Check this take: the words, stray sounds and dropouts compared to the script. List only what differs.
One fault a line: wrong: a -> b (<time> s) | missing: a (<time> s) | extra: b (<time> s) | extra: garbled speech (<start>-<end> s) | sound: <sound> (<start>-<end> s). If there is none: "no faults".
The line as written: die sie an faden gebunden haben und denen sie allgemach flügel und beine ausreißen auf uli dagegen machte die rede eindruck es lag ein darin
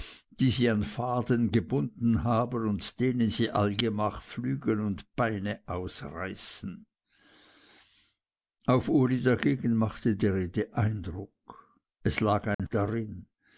sound: dropout (12.5-12.6 s)